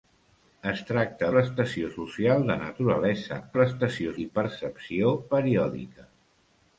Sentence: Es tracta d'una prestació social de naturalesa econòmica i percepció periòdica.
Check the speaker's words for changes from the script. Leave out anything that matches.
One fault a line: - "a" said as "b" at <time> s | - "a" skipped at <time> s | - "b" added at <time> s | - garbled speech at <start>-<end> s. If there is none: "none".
- "d'una" skipped at 1.3 s
- "econòmica" said as "prestació" at 3.6 s